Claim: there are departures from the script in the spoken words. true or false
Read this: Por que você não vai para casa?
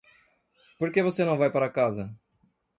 false